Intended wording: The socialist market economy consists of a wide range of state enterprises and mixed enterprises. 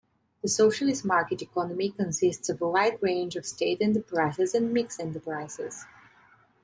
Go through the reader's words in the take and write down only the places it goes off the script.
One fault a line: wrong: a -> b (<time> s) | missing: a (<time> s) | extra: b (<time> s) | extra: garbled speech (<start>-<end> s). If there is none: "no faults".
no faults